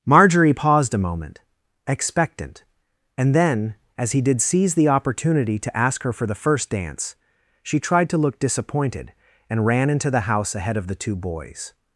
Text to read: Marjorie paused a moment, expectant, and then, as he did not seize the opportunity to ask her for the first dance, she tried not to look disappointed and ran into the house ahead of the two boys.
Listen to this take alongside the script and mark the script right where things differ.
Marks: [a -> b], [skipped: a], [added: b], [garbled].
Marjorie paused a moment, expectant, and then, as he did [skipped: not] seize the opportunity to ask her for the first dance, she tried [skipped: not] to look disappointed and ran into the house ahead of the two boys.